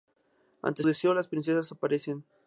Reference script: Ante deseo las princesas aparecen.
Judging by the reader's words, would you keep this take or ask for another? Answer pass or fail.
pass